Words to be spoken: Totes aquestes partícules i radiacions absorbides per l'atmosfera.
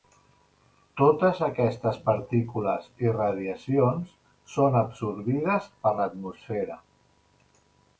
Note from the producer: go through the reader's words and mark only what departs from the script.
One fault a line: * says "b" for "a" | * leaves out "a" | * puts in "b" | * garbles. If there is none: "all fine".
* puts in "són"